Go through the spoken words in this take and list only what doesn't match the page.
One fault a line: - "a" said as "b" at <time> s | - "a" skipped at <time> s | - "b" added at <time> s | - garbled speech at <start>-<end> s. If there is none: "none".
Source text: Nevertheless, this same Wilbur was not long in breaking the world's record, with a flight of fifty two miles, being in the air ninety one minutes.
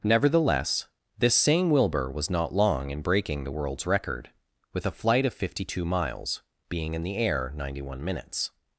none